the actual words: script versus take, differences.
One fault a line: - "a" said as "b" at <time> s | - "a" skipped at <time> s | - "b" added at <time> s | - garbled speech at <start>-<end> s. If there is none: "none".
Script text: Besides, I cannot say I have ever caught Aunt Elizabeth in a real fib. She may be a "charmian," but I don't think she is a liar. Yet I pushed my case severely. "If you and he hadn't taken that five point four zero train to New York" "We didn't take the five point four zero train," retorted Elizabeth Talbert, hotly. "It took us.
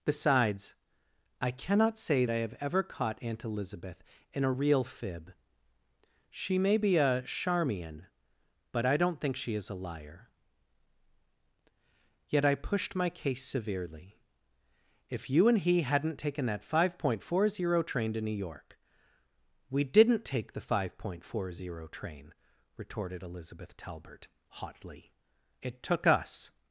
none